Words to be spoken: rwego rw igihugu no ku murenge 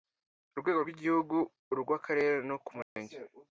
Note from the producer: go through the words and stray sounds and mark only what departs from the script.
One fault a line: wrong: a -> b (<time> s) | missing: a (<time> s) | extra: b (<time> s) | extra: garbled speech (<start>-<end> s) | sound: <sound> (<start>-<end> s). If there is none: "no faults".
extra: urw akarere (1.7 s)
sound: dropout (2.8-3.0 s)